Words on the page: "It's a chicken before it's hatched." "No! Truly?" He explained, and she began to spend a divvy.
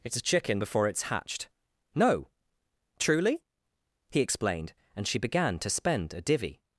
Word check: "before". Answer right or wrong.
right